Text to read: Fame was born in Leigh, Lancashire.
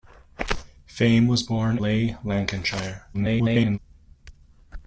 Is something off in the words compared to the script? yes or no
yes